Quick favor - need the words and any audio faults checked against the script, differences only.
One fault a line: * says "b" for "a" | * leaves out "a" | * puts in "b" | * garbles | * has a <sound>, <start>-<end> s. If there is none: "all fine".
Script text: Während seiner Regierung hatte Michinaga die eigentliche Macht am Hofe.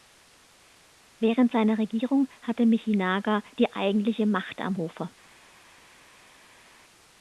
all fine